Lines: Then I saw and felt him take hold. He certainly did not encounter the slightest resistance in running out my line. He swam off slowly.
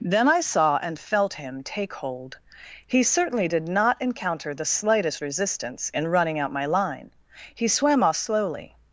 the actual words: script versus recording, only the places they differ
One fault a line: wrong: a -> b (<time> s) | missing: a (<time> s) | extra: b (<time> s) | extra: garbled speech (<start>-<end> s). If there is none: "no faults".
no faults